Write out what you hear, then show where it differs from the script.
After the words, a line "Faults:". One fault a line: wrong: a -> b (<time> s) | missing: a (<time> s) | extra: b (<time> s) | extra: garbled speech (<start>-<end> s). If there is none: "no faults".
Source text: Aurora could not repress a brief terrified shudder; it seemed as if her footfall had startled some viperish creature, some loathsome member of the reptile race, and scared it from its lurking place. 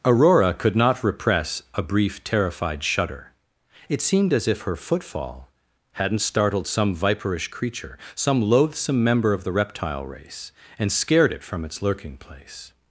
Aurora could not repress a brief terrified shudder; it seemed as if her footfall hadn't startled some viperish creature, some loathsome member of the reptile race, and scared it from its lurking place.
Faults:
wrong: had -> hadn't (5.9 s)